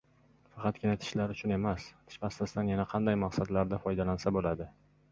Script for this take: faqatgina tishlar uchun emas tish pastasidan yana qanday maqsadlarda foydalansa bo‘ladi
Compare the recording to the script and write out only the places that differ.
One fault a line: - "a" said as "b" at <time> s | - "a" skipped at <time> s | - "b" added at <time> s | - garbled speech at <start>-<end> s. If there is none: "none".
none